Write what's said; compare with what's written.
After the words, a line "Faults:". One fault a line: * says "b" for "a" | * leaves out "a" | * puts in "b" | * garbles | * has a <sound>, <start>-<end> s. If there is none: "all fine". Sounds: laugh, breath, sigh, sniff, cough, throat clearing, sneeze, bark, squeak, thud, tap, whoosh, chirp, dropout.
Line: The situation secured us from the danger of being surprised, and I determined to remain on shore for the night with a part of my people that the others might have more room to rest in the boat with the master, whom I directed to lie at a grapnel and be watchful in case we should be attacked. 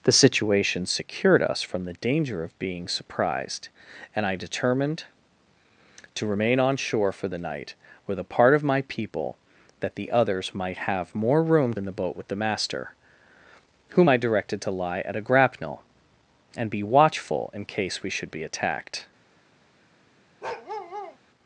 The situation secured us from the danger of being surprised, and I determined to remain on shore for the night with a part of my people that the others might have more room in the boat with the master, whom I directed to lie at a grapnel and be watchful in case we should be attacked.
Faults:
* leaves out "to rest"
* has a bark, 20.4-21.2 s